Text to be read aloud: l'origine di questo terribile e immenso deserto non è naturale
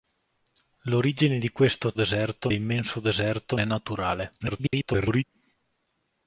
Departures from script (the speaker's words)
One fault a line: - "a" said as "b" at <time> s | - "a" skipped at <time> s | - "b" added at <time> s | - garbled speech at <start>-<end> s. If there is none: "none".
- "terribile" said as "deserto" at 1.9 s
- "non" skipped at 3.6 s
- garbled speech at 4.4-5.2 s